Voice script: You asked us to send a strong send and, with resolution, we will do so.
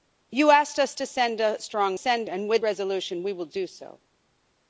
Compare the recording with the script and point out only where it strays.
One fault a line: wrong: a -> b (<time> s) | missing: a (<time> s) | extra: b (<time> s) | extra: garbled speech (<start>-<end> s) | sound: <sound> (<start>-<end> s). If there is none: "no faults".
no faults